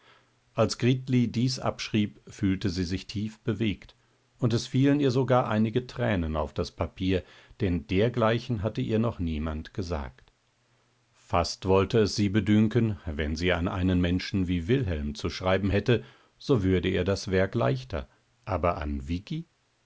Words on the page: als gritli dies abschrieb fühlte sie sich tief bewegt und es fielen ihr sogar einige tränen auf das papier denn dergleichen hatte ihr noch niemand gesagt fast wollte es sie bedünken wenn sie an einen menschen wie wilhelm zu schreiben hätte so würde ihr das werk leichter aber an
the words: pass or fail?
pass